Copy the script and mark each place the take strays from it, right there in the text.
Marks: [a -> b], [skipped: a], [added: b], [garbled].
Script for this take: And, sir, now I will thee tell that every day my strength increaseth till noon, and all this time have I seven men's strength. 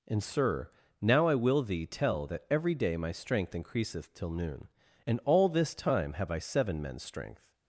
And, sir, now I will thee tell that every day my strength increaseth till noon, and all this time have I seven men's strength.